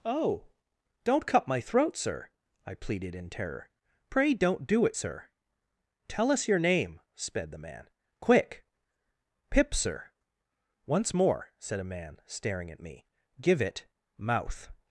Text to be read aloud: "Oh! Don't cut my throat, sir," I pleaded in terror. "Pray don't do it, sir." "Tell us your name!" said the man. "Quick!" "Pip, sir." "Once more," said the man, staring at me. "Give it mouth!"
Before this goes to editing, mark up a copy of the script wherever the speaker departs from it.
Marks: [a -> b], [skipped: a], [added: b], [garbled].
"Oh! Don't cut my throat, sir," I pleaded in terror. "Pray don't do it, sir." "Tell us your name!" [said -> sped] the man. "Quick!" "Pip, sir." "Once more," said [the -> a] man, staring at me. "Give it mouth!"